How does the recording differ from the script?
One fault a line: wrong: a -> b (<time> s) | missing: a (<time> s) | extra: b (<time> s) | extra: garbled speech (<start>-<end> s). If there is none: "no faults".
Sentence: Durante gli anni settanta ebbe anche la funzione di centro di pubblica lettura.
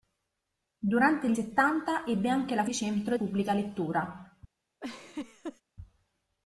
missing: anni (1.4 s)
missing: funzione (2.7 s)
missing: di (3.2 s)